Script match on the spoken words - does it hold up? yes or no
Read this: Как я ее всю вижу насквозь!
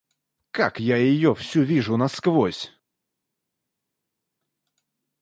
yes